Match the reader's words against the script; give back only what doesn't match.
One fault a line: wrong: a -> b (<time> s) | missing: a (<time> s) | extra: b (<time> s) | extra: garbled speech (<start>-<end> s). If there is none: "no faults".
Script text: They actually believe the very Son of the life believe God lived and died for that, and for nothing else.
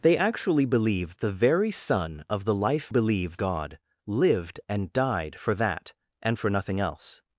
no faults